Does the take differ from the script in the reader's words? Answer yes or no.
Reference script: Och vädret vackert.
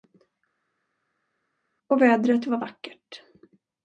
yes